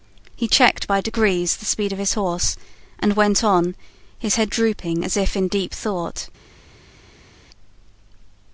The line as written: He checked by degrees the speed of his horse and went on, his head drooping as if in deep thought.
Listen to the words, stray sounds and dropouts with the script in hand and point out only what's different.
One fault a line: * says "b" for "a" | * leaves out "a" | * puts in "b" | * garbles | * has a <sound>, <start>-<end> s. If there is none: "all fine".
all fine